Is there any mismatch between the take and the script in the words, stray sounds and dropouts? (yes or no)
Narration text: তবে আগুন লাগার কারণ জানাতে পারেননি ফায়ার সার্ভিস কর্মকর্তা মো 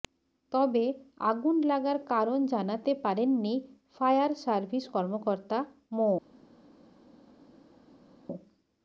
no